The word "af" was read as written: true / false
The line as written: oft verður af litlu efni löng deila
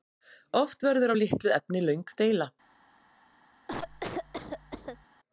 true